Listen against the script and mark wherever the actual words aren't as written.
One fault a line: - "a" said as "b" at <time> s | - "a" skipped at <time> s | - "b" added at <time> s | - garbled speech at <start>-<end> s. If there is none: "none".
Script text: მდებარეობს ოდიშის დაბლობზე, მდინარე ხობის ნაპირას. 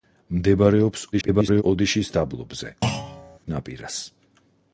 - garbled speech at 1.1-1.6 s
- "მდინარე ხობის" skipped at 2.7 s